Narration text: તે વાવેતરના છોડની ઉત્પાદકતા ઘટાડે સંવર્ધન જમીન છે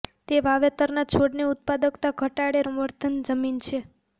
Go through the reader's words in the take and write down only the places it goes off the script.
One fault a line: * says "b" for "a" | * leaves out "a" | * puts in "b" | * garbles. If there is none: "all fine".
all fine